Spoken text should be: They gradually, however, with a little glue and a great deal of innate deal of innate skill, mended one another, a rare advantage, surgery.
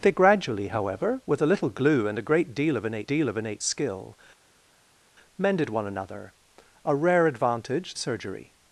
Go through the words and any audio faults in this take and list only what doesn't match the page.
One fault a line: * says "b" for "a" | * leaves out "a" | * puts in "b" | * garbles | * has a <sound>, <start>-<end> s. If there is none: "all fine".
all fine